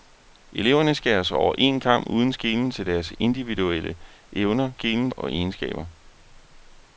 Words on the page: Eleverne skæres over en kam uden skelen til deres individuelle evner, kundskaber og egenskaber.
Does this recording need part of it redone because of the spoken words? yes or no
yes